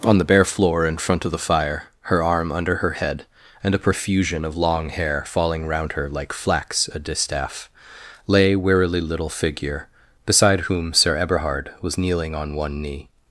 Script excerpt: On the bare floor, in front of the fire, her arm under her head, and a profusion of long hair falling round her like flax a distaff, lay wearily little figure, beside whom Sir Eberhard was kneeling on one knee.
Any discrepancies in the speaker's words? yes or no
no